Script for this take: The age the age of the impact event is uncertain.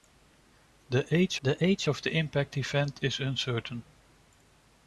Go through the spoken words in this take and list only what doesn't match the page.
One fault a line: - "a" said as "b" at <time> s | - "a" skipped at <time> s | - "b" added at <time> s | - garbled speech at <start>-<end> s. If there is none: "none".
none